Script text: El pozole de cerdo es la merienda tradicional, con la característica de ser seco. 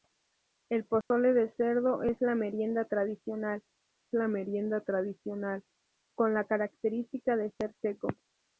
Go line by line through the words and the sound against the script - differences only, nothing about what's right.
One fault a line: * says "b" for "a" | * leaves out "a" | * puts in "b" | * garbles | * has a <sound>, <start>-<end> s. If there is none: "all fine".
* has a dropout, 1.0-1.1 s
* puts in "la merienda tradicional"